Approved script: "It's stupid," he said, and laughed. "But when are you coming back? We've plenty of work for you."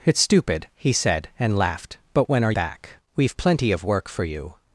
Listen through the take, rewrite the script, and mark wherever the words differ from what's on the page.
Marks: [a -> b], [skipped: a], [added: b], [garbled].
"It's stupid," he said, and laughed. "But when are [skipped: you coming] back? We've plenty of work for you."